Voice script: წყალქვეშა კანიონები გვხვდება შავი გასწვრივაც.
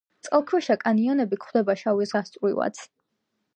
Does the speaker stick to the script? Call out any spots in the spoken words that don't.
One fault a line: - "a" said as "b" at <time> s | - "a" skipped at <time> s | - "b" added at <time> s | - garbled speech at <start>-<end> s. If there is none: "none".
none